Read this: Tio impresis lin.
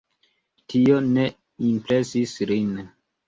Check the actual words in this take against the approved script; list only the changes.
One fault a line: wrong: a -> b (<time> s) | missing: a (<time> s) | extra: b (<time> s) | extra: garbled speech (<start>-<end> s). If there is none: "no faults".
extra: ne (1.1 s)